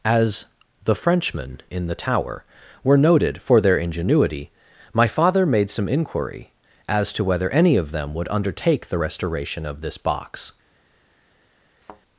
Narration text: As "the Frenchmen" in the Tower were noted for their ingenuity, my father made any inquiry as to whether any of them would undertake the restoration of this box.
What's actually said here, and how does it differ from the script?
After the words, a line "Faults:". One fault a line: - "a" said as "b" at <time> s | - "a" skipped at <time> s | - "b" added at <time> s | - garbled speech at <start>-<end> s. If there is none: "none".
As "the Frenchmen" in the Tower were noted for their ingenuity, my father made some inquiry as to whether any of them would undertake the restoration of this box.
Faults:
- "any" said as "some" at 5.7 s